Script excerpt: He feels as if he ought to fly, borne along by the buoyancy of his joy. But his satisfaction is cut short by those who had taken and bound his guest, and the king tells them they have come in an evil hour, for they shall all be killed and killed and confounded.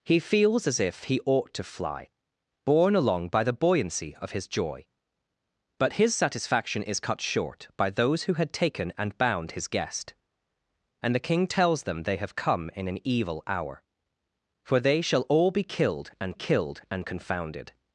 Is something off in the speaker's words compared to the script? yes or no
no